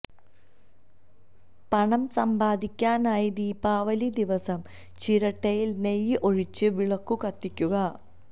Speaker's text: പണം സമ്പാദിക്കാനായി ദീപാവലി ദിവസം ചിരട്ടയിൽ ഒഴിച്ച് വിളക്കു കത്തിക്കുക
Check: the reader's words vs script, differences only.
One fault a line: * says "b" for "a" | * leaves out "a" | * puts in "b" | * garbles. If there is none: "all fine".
* puts in "നെയ്യ്"